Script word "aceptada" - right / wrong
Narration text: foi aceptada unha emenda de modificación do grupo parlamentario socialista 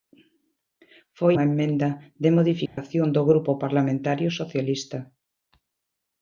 wrong